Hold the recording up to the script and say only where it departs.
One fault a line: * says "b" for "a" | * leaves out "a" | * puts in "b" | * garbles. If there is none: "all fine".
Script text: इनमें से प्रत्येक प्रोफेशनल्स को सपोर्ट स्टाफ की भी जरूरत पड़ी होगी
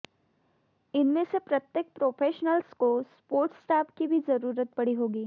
all fine